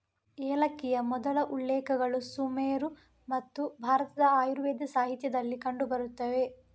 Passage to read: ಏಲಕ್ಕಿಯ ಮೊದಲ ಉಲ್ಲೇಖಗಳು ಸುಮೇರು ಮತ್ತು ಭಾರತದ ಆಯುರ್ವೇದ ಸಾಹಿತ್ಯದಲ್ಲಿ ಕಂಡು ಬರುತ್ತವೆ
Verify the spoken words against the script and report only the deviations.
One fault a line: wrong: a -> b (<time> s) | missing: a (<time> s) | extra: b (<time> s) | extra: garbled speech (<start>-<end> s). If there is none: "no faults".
no faults